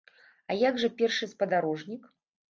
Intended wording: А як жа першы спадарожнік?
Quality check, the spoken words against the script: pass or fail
pass